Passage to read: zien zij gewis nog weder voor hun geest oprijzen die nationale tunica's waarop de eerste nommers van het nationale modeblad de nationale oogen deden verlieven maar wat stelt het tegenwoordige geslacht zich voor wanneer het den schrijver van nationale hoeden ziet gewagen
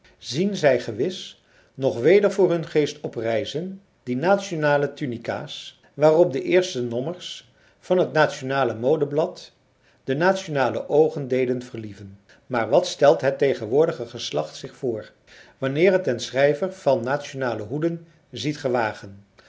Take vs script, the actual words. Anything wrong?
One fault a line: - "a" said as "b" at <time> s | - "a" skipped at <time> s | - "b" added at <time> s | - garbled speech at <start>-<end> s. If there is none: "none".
none